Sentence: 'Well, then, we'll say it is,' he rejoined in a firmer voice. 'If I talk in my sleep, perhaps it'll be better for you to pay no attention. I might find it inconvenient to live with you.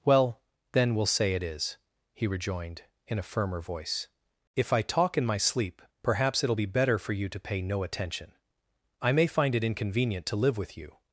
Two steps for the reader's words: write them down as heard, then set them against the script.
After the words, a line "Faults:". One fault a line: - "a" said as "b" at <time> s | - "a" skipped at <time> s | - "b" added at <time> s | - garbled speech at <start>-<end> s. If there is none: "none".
'Well, then, we'll say it is,' he rejoined in a firmer voice. 'If I talk in my sleep, perhaps it'll be better for you to pay no attention. I may find it inconvenient to live with you.
Faults:
- "might" said as "may" at 9.1 s